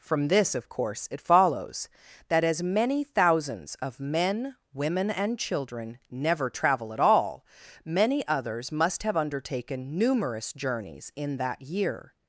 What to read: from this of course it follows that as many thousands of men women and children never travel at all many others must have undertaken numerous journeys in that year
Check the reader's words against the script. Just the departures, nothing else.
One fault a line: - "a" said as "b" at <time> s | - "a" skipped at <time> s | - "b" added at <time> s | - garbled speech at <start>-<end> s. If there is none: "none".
none